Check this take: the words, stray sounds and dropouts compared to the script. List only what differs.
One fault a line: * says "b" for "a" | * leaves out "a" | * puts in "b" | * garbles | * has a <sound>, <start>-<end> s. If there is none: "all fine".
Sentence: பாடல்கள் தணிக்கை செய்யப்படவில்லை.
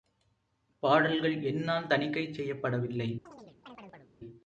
* puts in "என்னால்"
* has a chirp, 3.3-4.1 s